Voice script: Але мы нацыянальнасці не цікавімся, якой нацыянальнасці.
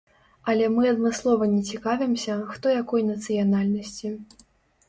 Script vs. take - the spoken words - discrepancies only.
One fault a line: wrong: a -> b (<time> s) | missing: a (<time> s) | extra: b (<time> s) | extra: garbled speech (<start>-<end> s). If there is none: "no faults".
wrong: нацыянальнасці -> адмыслова (0.9 s)
extra: хто (2.5 s)